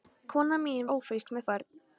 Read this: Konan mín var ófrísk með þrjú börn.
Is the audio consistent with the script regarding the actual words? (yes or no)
no